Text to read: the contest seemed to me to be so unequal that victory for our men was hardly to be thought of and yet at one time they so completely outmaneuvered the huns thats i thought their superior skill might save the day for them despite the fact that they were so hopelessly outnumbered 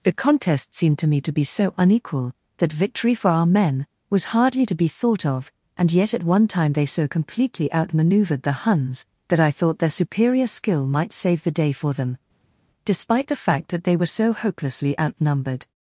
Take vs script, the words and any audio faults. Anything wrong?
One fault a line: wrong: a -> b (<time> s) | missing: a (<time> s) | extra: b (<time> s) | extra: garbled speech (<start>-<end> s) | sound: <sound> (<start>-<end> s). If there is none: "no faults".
wrong: thats -> that (9.3 s)